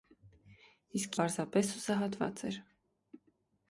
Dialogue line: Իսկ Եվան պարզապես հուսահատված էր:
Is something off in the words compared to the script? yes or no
yes